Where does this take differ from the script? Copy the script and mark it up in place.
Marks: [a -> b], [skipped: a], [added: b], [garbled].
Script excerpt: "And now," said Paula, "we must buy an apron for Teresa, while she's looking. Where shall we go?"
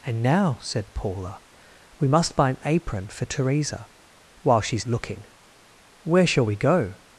"And now," said Paula, "we must buy an apron for Teresa, while she's looking. Where shall we go?"